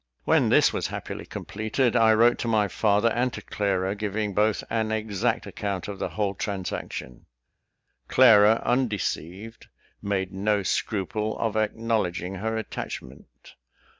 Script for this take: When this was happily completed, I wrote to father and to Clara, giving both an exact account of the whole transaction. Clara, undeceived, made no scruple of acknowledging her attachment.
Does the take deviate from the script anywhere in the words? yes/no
yes